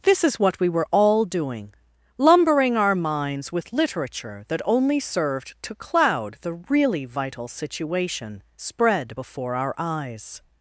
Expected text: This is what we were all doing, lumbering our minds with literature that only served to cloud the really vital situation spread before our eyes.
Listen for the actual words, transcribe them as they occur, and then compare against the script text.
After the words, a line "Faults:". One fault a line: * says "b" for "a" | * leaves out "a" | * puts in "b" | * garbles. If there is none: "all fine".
This is what we were all doing, lumbering our minds with literature that only served to cloud the really vital situation spread before our eyes.
Faults:
all fine